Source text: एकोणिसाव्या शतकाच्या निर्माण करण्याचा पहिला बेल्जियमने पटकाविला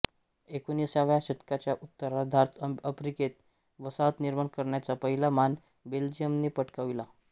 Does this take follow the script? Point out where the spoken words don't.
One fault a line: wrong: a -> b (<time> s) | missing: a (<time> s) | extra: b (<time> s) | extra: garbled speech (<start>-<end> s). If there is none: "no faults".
extra: उत्तरार्धात आफ्रिकेत वसाहत (1.7 s)
extra: मान (5.3 s)